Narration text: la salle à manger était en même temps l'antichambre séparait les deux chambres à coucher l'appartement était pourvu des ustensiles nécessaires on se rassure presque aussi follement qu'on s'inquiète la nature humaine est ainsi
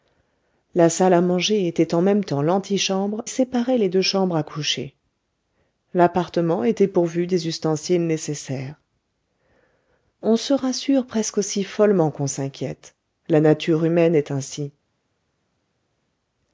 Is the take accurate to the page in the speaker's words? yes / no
yes